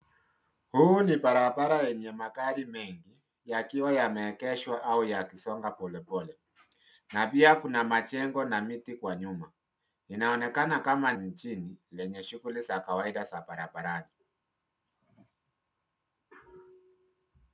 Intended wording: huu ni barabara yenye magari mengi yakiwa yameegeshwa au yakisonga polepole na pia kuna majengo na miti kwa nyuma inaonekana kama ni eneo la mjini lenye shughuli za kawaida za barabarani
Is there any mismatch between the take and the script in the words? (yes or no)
yes